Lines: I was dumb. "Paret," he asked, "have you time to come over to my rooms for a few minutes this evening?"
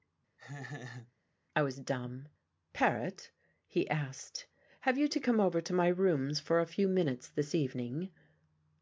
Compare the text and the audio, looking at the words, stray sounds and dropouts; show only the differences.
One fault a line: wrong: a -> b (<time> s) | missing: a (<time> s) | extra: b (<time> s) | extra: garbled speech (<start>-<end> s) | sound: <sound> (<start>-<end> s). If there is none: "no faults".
sound: laugh (0.4-1.1 s)
missing: time (5.1 s)